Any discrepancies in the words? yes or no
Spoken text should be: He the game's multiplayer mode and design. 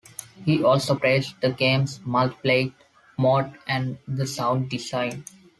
yes